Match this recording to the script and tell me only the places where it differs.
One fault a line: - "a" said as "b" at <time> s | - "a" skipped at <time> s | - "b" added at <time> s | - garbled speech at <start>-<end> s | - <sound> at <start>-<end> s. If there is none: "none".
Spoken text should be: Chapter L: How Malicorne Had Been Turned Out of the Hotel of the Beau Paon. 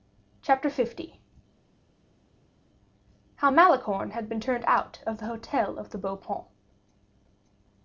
none